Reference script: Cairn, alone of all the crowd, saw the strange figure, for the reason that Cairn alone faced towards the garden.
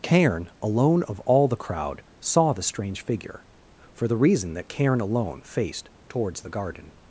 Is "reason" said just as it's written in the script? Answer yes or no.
yes